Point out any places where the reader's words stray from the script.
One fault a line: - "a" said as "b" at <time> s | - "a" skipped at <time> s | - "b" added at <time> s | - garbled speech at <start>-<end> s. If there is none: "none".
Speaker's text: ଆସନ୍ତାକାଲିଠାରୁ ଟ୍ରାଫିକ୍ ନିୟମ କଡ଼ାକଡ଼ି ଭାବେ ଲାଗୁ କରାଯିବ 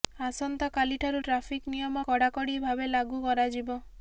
none